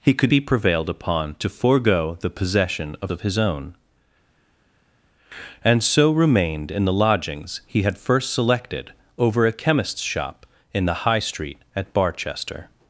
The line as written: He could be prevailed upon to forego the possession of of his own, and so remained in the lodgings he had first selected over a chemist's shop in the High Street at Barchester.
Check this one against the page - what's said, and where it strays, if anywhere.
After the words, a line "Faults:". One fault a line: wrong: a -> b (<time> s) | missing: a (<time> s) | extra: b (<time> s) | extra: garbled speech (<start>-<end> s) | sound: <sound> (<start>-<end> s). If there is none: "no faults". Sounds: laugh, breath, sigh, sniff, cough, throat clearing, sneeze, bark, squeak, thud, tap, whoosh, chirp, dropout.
He could be prevailed upon to forego the possession of of his own, and so remained in the lodgings he had first selected over a chemist's shop in the High Street at Barchester.
Faults:
no faults